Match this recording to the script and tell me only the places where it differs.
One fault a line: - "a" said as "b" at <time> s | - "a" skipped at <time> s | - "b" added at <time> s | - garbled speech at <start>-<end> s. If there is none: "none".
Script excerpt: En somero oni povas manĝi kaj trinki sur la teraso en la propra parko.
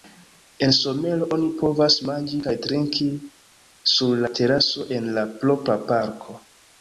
none